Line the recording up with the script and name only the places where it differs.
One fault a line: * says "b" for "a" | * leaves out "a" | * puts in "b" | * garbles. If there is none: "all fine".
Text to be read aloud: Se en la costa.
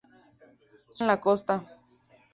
all fine